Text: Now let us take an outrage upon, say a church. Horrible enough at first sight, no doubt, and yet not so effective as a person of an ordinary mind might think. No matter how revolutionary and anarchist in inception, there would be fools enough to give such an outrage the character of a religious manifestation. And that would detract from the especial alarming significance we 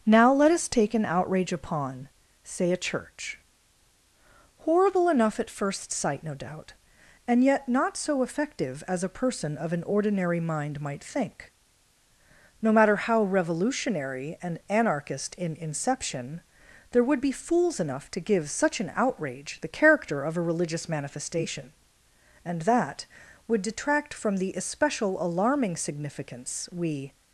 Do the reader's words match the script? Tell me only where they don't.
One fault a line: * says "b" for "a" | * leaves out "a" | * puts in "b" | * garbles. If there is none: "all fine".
all fine